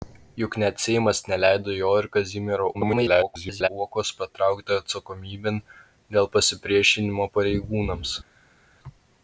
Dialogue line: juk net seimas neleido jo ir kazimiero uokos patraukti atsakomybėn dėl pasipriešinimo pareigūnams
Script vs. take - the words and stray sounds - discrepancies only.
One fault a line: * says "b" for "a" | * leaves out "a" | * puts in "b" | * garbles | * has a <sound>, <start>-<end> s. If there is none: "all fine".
* garbles